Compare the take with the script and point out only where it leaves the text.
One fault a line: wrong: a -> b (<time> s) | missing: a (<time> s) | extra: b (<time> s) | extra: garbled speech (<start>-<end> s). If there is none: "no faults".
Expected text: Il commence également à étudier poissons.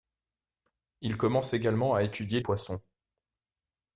no faults